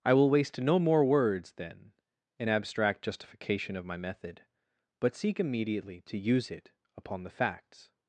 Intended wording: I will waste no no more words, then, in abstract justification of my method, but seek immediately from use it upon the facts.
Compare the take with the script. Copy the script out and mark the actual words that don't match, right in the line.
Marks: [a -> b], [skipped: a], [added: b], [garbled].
I will waste no [skipped: no] more words, then, in abstract justification of my method, but seek immediately [from -> to] use it upon the facts.